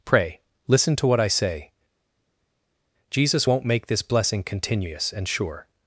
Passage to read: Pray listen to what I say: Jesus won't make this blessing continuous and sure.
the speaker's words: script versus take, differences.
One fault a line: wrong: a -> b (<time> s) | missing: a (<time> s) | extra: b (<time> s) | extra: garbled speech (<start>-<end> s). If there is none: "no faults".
no faults